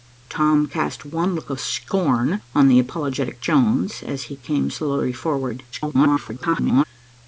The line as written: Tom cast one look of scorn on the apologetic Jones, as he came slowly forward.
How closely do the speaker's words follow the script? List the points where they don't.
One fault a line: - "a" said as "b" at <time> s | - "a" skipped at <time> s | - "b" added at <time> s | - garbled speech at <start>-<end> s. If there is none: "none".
- garbled speech at 5.7-6.8 s